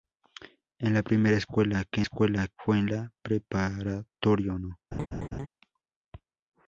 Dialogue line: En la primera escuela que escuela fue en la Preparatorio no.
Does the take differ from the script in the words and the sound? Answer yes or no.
yes